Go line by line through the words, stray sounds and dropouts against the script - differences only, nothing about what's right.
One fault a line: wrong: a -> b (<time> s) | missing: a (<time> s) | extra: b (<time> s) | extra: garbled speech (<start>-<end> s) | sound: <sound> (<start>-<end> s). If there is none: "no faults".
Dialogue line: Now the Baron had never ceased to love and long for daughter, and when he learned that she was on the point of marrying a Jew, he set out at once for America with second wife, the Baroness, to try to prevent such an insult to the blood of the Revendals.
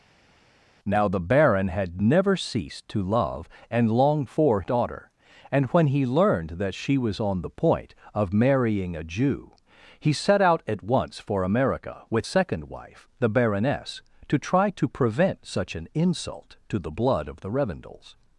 no faults